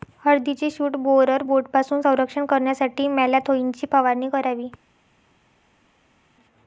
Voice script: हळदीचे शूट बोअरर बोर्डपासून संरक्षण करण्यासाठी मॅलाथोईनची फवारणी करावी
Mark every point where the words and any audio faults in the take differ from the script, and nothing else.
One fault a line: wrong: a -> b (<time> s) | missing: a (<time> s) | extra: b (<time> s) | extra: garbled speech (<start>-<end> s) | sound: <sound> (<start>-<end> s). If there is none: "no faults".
no faults